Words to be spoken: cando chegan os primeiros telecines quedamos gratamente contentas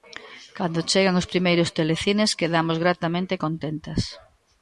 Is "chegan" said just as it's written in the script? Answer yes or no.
yes